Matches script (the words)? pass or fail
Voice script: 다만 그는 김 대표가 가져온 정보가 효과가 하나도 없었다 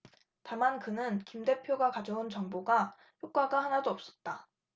pass